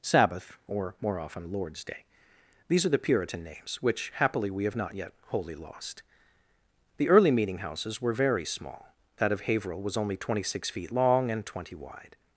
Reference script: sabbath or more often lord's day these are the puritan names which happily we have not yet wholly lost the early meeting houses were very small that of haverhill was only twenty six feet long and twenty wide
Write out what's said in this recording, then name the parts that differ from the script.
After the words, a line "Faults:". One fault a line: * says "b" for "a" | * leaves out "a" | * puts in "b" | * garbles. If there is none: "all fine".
sabbath or more often lord's day these are the puritan names which happily we have not yet wholly lost the early meeting houses were very small that of haverhill was only twenty six feet long and twenty wide
Faults:
all fine